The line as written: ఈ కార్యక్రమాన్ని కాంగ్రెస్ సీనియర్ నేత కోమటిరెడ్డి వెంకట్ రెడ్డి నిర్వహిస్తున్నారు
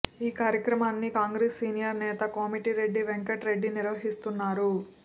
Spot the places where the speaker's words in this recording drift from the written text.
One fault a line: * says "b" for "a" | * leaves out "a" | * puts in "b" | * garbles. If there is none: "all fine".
all fine